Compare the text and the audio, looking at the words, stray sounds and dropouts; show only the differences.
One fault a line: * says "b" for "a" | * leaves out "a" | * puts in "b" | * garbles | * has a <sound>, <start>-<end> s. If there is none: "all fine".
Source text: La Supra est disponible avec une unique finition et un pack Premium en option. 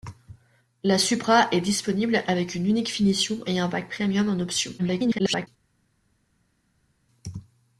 * garbles